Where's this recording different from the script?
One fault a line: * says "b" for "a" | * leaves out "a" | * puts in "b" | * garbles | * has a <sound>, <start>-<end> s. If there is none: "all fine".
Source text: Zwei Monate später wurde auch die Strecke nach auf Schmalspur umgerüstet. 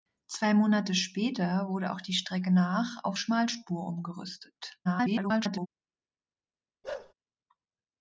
* garbles
* has a bark, 6.8-7.1 s